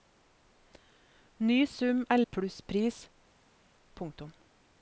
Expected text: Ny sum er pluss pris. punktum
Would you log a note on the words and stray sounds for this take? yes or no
no